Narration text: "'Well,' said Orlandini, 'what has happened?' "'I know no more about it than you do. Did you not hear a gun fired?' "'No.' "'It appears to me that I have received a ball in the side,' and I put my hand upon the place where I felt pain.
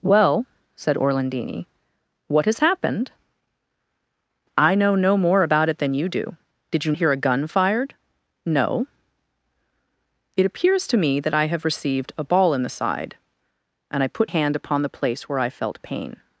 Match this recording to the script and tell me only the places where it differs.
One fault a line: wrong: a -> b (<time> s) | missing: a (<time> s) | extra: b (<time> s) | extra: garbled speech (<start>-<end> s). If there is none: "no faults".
missing: not (6.9 s)
missing: my (14.3 s)